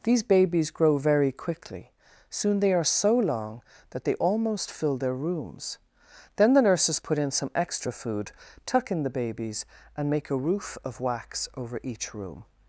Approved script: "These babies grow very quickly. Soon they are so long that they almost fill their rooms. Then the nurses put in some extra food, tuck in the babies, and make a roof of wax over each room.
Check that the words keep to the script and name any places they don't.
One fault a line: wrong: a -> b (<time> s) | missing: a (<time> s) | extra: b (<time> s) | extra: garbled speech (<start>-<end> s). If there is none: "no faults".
no faults